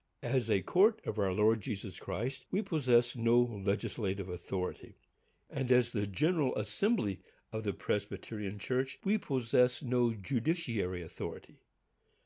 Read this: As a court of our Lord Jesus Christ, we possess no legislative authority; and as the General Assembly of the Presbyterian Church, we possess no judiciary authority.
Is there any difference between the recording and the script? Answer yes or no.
no